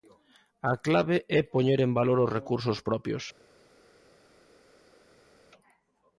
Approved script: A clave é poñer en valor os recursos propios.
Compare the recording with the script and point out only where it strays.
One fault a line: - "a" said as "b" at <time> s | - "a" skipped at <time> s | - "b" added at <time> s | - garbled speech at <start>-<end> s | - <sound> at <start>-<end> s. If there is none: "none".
none